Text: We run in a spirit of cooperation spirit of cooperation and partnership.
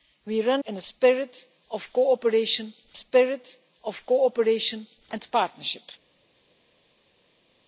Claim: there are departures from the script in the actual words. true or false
false